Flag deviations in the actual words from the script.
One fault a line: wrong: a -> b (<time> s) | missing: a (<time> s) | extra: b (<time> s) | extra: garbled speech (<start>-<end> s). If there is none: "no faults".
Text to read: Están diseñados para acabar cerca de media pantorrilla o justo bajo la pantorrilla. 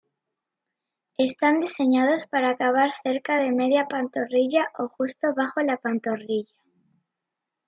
no faults